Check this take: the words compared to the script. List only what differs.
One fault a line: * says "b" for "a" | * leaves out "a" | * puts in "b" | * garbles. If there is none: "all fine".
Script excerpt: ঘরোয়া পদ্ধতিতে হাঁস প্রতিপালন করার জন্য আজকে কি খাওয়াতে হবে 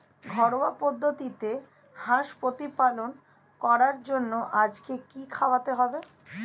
all fine